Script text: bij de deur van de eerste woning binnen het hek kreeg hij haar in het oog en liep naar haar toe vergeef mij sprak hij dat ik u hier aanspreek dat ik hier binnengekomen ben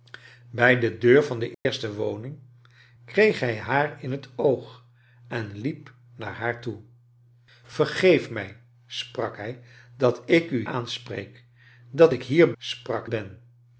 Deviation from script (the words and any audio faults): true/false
true